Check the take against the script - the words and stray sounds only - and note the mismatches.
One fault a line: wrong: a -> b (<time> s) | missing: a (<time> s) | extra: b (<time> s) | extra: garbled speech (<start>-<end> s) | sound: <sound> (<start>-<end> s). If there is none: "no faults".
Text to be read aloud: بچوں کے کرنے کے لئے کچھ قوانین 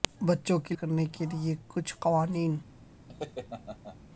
sound: laugh (3.1-4.0 s)